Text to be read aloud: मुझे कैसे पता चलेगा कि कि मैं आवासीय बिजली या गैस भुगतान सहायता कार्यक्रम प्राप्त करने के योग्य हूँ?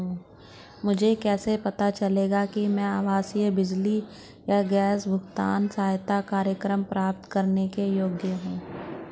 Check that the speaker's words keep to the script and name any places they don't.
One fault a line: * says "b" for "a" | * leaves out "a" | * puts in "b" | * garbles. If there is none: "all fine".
* leaves out "कि"